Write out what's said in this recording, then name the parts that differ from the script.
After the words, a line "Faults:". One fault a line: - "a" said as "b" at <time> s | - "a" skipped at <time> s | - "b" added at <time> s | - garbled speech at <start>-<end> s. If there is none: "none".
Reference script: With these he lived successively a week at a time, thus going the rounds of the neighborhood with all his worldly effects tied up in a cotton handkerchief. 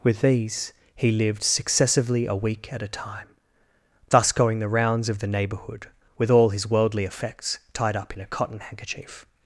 With these he lived successively a week at a time, thus going the rounds of the neighborhood with all his worldly effects tied up in a cotton handkerchief.
Faults:
none